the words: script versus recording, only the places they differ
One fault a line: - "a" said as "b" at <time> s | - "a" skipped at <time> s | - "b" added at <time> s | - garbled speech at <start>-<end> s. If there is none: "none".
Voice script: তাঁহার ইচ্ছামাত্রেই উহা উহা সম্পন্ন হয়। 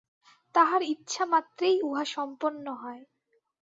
- "উহা" skipped at 2.0 s